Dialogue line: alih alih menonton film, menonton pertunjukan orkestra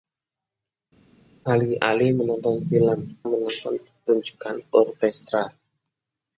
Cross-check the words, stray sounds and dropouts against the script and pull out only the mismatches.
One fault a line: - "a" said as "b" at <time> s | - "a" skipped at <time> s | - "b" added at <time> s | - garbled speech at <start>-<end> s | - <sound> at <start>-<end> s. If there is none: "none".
none